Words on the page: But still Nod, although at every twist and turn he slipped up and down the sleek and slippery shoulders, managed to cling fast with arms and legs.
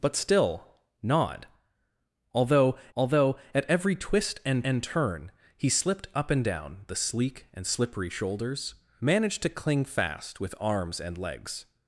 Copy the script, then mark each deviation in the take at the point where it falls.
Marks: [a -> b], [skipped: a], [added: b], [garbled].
But still Nod, although [added: although] at every twist and [added: and] turn he slipped up and down the sleek and slippery shoulders, managed to cling fast with arms and legs.